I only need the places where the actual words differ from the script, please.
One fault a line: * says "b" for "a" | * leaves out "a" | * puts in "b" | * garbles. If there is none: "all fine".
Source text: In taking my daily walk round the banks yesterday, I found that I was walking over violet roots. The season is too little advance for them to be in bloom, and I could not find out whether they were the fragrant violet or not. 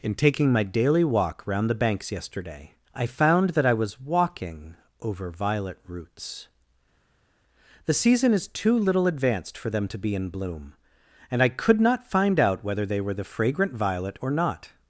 * says "advanced" for "advance"